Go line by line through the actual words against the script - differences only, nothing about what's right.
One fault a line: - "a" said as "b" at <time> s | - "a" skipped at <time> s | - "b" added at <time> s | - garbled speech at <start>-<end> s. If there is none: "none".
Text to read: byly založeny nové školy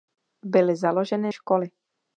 - "nové" skipped at 1.3 s